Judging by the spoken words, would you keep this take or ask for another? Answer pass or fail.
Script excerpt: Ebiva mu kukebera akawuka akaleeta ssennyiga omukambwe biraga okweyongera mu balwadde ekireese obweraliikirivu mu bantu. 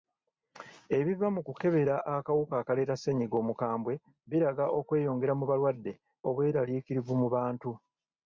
fail